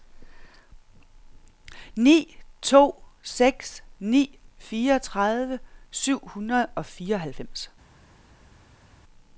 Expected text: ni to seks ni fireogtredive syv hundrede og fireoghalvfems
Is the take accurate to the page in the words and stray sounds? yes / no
yes